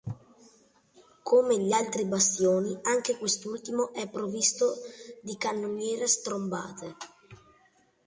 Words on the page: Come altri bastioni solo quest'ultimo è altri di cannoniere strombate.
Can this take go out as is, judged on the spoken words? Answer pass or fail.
fail